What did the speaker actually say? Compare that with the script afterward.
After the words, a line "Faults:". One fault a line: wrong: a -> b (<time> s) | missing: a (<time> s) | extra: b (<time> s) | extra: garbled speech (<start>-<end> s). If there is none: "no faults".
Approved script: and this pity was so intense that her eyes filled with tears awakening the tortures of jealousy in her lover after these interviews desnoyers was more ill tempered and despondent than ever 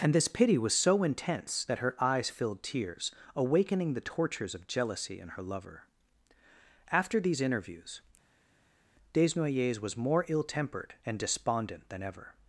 and this pity was so intense that her eyes filled tears awakening the tortures of jealousy in her lover after these interviews desnoyers was more ill tempered and despondent than ever
Faults:
missing: with (2.6 s)